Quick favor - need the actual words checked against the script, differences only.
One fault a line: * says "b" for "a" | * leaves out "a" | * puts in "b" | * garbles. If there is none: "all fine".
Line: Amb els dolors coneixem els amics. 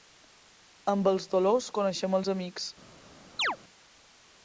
all fine